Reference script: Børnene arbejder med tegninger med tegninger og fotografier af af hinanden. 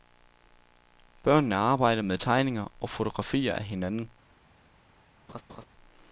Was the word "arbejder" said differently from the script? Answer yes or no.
no